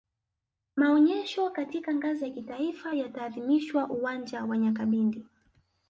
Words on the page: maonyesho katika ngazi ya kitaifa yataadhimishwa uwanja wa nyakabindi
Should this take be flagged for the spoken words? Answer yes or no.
no